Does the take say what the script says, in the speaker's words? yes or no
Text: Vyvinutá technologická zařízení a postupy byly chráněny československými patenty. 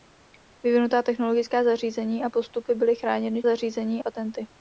no